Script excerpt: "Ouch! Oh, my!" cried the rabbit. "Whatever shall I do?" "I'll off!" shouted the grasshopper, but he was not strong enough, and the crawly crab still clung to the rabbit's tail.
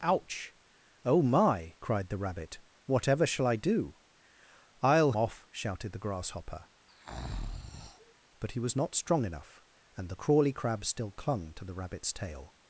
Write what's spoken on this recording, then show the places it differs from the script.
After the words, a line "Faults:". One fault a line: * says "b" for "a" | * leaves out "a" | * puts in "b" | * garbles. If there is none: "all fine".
"Ouch! Oh, my!" cried the rabbit. "Whatever shall I do?" "I'll off!" shouted the grasshopper, but he was not strong enough, and the crawly crab still clung to the rabbit's tail.
Faults:
all fine